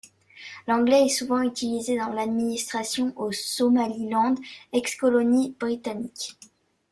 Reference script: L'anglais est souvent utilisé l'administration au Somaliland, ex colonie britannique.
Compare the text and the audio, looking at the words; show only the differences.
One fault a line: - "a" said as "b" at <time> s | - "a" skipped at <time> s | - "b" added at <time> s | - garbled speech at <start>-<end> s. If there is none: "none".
- "dans" added at 1.9 s